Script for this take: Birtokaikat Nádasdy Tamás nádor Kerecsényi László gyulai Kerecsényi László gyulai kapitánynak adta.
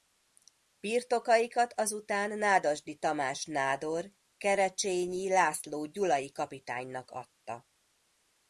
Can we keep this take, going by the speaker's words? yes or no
no